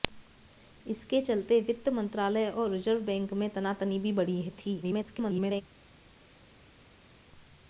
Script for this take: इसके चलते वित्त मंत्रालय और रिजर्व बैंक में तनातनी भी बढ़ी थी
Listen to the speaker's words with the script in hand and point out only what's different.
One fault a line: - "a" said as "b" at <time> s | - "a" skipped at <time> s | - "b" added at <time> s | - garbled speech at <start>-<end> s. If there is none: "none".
- garbled speech at 4.8-5.6 s